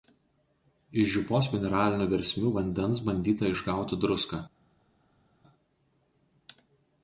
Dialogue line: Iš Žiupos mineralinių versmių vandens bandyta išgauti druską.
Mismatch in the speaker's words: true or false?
false